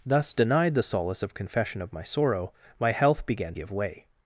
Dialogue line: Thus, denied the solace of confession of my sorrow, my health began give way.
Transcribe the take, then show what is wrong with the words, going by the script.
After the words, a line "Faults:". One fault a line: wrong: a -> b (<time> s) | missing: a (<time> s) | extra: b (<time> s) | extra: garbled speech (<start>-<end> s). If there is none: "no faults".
Thus, denied the solace of confession of my sorrow, my health began give way.
Faults:
no faults